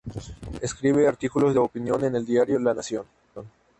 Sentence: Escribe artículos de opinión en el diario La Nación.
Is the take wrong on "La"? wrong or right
right